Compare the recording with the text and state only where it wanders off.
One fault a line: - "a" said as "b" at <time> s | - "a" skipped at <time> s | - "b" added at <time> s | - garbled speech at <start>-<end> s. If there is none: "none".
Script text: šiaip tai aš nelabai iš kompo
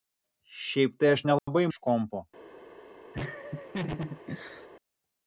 none